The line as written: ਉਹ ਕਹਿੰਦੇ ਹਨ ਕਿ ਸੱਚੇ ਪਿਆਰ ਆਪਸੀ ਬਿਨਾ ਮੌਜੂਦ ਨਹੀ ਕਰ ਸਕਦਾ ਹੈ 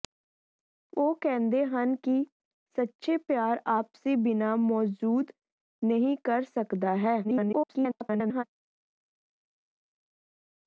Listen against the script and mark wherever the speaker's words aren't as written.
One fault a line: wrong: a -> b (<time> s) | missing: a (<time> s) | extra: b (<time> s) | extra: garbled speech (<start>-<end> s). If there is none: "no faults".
extra: garbled speech (7.2-8.4 s)